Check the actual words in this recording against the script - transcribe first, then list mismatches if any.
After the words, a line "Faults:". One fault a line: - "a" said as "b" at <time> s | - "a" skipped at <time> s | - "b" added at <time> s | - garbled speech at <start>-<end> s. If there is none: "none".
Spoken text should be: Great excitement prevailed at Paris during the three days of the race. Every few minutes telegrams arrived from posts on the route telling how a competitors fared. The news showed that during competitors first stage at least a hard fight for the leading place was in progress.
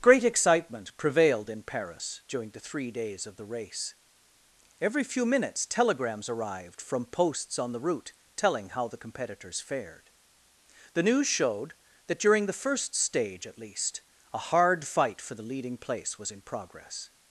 Great excitement prevailed in Paris during the three days of the race. Every few minutes telegrams arrived from posts on the route telling how the competitors fared. The news showed that during the first stage at least a hard fight for the leading place was in progress.
Faults:
- "at" said as "in" at 1.5 s
- "a" said as "the" at 8.9 s
- "competitors" said as "the" at 12.5 s